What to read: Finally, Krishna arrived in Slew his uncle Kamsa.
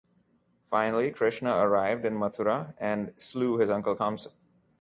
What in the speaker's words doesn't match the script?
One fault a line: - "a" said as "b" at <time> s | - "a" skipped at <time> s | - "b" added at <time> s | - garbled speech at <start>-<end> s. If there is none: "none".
- "Mathura and" added at 2.1 s